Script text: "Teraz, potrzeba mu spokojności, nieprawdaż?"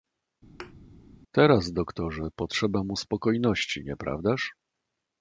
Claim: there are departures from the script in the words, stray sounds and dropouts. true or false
true